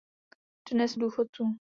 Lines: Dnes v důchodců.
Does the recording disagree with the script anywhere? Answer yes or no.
no